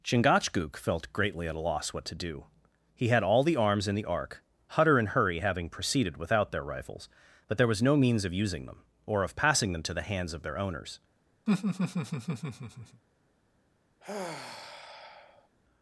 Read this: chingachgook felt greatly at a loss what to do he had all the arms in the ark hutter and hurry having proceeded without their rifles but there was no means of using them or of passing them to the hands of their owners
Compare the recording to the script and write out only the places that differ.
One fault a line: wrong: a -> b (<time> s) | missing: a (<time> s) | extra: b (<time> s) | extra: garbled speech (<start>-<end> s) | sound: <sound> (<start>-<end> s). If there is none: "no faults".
sound: laugh (11.5-13.0 s)
sound: sigh (14.0-15.5 s)